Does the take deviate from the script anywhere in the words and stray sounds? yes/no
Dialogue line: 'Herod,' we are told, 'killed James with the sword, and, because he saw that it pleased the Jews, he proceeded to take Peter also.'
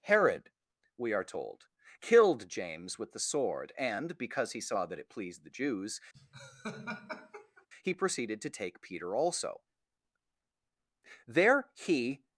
yes